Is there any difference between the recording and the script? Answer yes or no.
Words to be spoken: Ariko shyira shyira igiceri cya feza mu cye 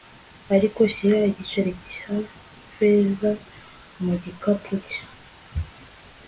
yes